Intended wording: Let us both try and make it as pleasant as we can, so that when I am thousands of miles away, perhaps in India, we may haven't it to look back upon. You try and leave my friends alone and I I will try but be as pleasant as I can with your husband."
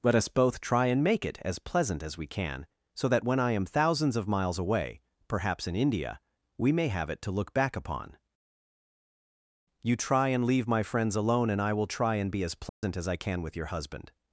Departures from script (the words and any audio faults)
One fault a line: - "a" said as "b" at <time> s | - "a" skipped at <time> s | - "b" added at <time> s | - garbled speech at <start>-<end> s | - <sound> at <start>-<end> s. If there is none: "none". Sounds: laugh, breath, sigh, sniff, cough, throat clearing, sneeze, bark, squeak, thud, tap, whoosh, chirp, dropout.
- "haven't" said as "have" at 6.9 s
- "I" skipped at 11.7 s
- "but" said as "and" at 12.1 s
- dropout at 12.7-12.8 s